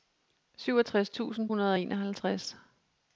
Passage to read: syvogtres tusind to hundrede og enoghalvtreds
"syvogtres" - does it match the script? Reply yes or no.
yes